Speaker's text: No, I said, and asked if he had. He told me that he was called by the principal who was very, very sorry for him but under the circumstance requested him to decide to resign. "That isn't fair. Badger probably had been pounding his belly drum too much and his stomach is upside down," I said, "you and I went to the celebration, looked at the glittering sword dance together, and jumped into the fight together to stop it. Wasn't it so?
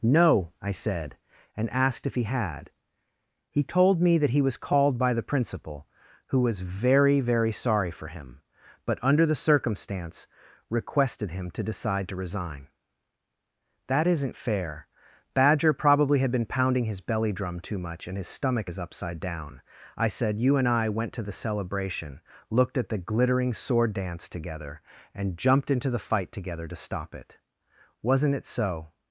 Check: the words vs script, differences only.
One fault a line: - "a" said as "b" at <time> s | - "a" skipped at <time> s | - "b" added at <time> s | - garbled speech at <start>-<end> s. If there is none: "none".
none